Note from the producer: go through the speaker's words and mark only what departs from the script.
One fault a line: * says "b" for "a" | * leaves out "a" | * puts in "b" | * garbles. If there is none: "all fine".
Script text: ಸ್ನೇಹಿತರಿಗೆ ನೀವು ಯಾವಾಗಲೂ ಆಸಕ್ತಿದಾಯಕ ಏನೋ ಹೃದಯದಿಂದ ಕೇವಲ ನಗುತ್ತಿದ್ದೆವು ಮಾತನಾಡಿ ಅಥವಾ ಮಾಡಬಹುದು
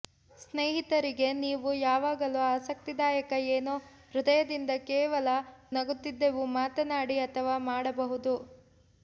all fine